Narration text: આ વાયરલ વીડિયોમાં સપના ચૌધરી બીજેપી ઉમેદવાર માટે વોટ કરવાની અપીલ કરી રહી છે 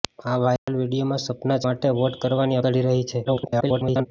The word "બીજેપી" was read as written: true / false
false